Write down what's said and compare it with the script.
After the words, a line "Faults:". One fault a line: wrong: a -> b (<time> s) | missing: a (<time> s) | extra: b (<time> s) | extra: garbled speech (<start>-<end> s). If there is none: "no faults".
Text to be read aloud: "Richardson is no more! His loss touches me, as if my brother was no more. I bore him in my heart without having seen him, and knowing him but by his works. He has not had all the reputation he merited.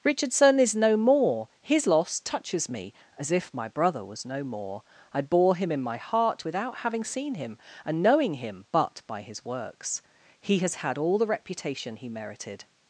"Richardson is no more! His loss touches me, as if my brother was no more. I bore him in my heart without having seen him, and knowing him but by his works. He has had all the reputation he merited.
Faults:
missing: not (10.8 s)